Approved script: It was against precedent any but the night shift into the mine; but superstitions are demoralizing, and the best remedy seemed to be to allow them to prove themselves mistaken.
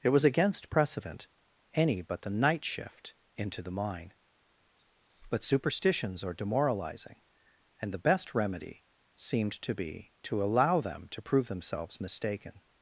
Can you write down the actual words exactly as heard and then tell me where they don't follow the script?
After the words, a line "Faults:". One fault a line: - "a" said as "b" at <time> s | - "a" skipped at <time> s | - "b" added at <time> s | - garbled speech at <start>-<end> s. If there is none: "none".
It was against precedent any but the night shift into the mine; but superstitions are demoralizing, and the best remedy seemed to be to allow them to prove themselves mistaken.
Faults:
none